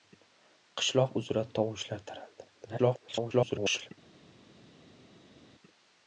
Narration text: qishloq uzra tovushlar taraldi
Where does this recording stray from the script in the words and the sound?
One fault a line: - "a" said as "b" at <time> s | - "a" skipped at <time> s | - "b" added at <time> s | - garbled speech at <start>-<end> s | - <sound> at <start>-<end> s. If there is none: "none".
- garbled speech at 2.5-3.9 s